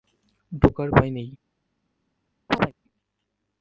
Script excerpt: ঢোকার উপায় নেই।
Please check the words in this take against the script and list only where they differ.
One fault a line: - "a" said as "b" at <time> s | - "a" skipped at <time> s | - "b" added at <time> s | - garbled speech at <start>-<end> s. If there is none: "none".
none